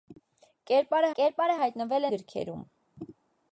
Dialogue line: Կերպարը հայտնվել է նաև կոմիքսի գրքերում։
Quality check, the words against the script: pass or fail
fail